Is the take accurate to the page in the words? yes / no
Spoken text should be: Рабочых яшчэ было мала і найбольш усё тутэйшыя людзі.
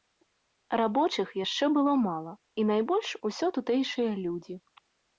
yes